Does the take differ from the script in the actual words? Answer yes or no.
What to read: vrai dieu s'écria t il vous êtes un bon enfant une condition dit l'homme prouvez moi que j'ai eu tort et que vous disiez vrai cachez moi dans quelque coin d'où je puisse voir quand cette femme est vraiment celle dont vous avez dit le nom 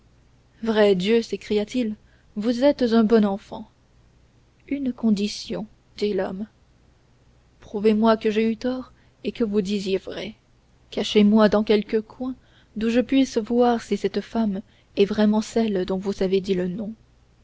yes